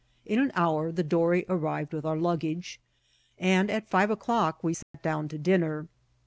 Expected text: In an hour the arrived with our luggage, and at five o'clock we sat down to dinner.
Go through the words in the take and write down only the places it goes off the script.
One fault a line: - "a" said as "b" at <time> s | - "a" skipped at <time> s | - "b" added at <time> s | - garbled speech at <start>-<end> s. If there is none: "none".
- "dory" added at 1.0 s